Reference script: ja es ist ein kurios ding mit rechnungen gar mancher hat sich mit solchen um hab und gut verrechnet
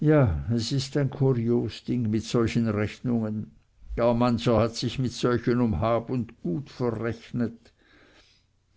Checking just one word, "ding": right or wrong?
right